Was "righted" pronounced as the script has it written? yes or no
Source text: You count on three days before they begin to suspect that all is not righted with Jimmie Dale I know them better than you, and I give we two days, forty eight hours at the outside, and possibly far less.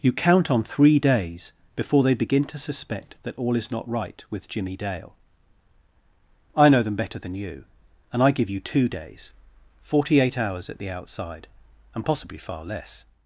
no